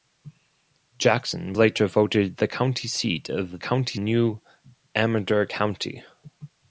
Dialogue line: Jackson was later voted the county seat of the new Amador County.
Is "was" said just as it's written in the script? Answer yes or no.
no